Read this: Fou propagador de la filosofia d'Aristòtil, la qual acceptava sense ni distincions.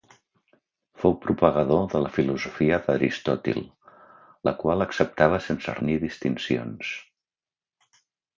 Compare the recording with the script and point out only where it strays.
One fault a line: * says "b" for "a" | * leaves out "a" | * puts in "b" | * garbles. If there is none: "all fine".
all fine